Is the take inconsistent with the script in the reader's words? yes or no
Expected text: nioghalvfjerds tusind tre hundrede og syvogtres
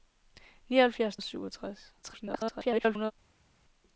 yes